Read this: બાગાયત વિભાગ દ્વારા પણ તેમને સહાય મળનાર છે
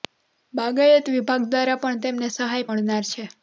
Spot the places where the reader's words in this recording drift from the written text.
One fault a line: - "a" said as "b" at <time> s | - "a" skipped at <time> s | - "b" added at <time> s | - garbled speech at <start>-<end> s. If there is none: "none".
none